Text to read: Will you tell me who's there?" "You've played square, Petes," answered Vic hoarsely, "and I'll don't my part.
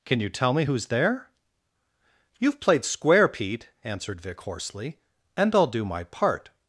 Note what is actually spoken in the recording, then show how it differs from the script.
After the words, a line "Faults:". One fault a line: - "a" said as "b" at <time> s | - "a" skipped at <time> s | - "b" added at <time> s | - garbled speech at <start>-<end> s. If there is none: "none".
Can you tell me who's there?" "You've played square, Pete," answered Vic hoarsely, "and I'll do my part.
Faults:
- "Will" said as "Can" at 0.1 s
- "Petes" said as "Pete" at 3.3 s
- "don't" said as "do" at 5.7 s